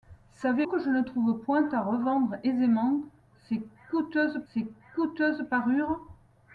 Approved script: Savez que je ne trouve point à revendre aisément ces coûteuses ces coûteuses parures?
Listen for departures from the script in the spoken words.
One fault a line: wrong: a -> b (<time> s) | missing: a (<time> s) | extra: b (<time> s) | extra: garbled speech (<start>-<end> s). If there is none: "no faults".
no faults